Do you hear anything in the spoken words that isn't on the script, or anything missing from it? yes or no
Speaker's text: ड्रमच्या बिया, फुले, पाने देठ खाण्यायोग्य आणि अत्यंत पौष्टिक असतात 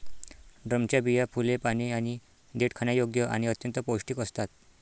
yes